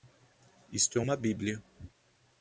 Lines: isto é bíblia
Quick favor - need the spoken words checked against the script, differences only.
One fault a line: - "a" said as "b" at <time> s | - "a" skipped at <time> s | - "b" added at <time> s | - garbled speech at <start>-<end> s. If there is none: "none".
- "uma" added at 1.0 s